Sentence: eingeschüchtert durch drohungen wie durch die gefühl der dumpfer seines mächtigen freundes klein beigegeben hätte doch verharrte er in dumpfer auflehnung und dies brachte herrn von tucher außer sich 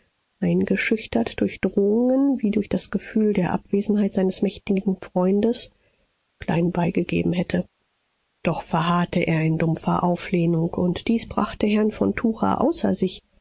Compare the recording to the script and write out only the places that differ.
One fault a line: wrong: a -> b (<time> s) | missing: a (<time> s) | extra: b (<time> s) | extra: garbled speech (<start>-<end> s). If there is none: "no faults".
wrong: die -> das (2.7 s)
wrong: dumpfer -> abwesenheit (3.5 s)